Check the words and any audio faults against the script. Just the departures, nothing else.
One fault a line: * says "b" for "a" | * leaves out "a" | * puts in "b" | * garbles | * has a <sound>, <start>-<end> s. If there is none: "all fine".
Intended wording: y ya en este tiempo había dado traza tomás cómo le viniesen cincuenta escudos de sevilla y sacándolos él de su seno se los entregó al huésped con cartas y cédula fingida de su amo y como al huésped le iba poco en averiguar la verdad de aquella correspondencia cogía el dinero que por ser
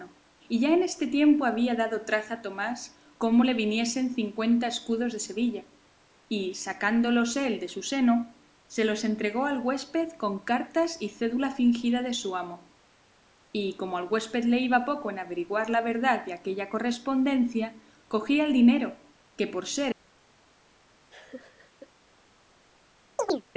* has a laugh, 21.1-21.9 s
* has a chirp, 23.2-23.5 s